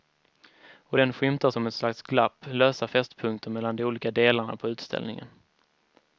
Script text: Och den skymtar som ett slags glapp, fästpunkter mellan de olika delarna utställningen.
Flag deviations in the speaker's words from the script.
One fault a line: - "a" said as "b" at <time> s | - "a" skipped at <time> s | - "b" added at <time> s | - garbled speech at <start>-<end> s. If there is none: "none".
- "lösa" added at 2.5 s
- "på" added at 4.6 s